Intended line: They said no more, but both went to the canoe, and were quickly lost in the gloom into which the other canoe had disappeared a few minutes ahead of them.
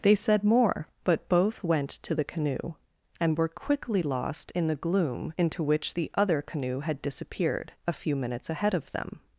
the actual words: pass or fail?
fail